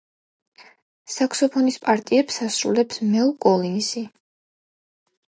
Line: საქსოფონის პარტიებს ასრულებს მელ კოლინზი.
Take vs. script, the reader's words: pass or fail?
pass